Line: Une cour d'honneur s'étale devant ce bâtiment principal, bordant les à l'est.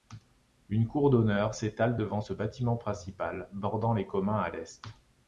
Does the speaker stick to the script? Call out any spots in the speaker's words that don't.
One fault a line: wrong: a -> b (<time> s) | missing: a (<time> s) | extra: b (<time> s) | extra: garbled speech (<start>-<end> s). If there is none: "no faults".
extra: communs (4.1 s)